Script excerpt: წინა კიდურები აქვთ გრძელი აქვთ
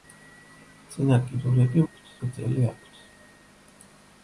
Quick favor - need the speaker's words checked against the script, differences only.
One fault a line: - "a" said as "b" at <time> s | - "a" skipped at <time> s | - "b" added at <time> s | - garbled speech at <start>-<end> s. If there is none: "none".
none